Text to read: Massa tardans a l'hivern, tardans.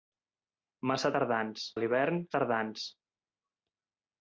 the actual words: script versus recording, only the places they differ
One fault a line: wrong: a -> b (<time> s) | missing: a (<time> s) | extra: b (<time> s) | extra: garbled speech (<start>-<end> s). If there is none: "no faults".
no faults